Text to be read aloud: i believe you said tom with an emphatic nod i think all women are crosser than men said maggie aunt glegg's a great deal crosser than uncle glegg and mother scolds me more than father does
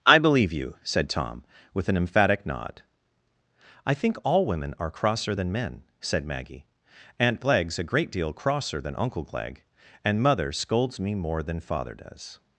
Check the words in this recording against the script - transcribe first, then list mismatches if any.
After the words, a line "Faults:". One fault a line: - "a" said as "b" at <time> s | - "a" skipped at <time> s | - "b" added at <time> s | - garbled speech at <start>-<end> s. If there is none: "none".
i believe you said tom with an emphatic nod i think all women are crosser than men said maggie aunt glegg's a great deal crosser than uncle glegg and mother scolds me more than father does
Faults:
none